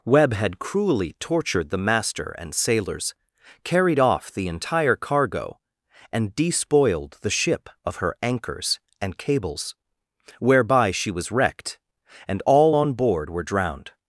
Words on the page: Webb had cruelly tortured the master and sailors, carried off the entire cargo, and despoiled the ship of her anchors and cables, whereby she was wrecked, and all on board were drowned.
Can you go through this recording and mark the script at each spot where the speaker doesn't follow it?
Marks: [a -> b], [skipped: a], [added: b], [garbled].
Webb had cruelly tortured the master and sailors, carried off the entire cargo, and despoiled the ship of her anchors and cables, whereby she was wrecked, and all on board were drowned.